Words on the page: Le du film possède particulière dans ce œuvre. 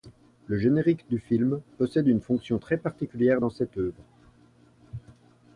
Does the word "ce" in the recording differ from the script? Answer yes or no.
yes